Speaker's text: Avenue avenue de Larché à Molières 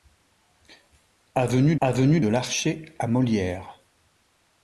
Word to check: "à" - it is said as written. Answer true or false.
true